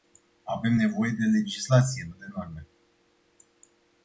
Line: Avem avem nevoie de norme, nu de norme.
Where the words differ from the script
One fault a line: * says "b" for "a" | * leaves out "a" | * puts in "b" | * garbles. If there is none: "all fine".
* leaves out "avem"
* says "legislație" for "norme"